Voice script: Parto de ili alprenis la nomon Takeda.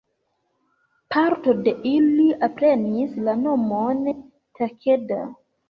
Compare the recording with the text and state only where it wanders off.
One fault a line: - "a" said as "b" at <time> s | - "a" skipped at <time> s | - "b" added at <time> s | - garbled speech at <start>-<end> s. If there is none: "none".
none